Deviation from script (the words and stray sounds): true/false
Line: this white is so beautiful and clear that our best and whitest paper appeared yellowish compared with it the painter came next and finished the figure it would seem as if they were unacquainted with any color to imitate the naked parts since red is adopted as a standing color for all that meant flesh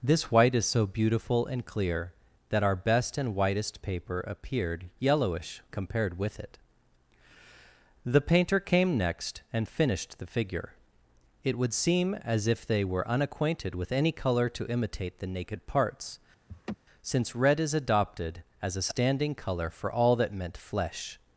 true